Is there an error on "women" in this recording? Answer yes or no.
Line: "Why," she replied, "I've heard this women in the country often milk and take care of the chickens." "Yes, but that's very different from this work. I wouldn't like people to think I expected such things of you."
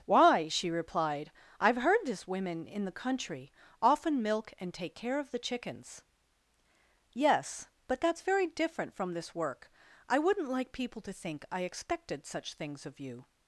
no